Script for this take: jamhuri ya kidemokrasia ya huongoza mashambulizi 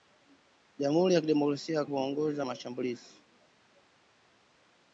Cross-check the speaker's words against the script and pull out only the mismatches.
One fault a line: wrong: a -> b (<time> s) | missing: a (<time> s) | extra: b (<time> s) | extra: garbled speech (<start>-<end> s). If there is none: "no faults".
no faults